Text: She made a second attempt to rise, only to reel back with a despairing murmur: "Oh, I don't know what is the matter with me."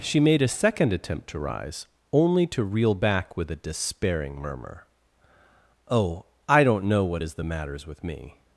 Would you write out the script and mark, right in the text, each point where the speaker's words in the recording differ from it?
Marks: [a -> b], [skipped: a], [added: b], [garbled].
She made a second attempt to rise, only to reel back with a despairing murmur: "Oh, I don't know what is the [matter -> matters] with me."